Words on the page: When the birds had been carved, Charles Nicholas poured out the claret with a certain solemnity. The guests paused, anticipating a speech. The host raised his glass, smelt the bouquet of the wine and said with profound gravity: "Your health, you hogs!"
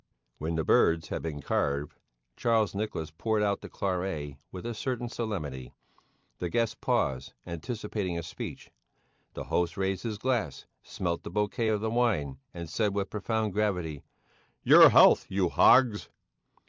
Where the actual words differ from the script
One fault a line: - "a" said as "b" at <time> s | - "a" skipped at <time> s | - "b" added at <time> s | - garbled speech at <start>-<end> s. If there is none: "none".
none